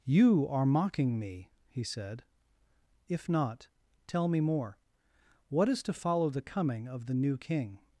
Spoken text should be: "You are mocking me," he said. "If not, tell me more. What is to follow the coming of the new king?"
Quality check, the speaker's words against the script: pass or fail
pass